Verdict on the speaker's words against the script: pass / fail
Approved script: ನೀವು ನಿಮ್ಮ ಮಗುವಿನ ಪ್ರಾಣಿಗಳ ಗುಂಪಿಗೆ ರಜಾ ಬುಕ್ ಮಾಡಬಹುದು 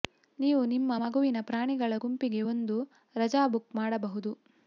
fail